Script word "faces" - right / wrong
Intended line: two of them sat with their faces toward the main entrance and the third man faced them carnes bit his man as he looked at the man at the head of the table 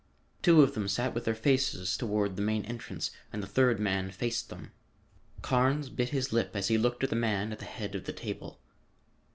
right